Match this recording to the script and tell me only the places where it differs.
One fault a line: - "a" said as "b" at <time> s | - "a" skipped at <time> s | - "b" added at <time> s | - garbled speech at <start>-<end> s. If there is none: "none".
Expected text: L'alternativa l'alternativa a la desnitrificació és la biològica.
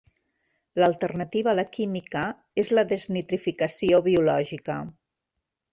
- "l'alternativa" skipped at 1.5 s
- "desnitrificació" said as "química" at 1.8 s
- "desnitrificació" added at 2.9 s